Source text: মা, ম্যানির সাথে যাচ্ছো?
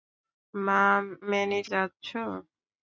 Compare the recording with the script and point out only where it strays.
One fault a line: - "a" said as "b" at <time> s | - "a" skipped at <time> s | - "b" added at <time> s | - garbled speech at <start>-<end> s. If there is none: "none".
- "সাথে" skipped at 1.7 s